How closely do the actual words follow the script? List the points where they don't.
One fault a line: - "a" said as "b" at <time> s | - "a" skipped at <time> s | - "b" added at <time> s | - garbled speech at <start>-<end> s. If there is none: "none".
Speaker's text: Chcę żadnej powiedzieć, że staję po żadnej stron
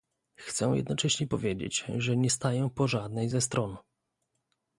- "żadnej" said as "jednocześnie" at 0.8 s
- "nie" added at 2.2 s
- "ze" added at 3.3 s